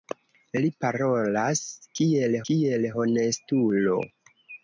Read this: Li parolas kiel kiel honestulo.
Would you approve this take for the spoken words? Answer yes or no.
yes